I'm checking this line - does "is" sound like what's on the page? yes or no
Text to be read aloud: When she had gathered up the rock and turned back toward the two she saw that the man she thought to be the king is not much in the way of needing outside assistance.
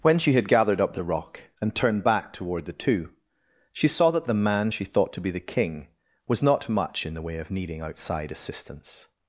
no